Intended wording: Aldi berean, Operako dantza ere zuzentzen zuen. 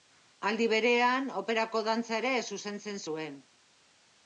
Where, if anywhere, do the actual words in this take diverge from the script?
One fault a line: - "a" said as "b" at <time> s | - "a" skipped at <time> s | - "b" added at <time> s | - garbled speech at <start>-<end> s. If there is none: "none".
none